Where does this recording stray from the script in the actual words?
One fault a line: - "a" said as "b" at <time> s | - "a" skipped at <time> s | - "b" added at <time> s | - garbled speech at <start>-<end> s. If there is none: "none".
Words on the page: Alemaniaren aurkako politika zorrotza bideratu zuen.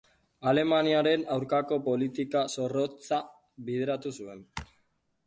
none